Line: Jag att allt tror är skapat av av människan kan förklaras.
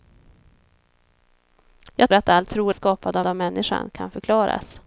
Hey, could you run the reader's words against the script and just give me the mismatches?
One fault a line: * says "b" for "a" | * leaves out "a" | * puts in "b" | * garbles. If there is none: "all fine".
all fine